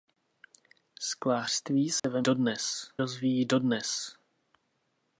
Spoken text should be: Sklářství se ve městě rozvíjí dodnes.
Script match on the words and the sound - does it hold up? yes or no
no